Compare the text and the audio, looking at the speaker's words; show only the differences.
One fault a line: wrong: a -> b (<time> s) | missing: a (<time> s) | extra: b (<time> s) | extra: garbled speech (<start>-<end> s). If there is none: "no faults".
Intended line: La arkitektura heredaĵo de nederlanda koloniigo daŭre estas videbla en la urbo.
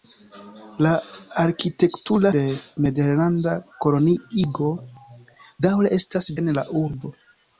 missing: heredaĵo (2.3 s)
missing: videbla (6.3 s)